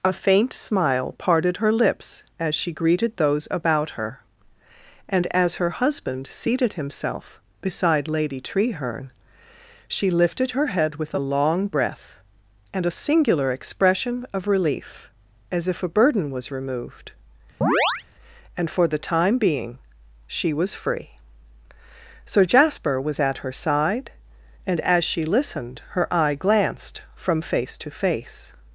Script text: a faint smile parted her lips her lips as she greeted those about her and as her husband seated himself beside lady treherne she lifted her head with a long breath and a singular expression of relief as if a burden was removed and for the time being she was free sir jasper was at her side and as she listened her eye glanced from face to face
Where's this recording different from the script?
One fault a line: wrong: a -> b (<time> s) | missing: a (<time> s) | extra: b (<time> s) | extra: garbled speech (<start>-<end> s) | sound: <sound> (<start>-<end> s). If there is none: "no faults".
missing: her lips (2.2 s)
sound: chirp (17.6-18.0 s)